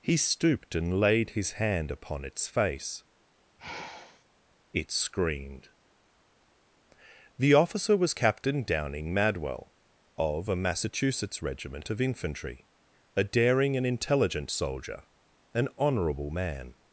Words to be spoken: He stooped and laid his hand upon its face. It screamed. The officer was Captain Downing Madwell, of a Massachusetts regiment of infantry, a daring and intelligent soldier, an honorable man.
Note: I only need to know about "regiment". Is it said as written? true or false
true